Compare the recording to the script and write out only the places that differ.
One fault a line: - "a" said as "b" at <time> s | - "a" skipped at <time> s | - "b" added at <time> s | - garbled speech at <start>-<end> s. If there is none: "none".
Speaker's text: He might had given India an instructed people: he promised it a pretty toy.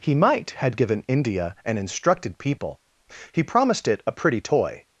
none